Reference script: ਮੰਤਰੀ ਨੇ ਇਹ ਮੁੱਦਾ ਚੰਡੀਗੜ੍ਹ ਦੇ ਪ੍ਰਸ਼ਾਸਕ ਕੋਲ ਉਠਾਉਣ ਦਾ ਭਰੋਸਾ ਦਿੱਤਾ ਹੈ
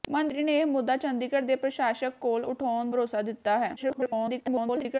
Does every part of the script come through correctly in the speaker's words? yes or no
no